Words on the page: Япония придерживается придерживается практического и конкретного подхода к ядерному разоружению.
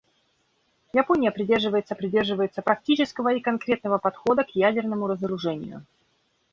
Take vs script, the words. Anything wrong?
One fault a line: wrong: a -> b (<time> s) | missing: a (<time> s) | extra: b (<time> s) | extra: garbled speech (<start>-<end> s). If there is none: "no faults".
no faults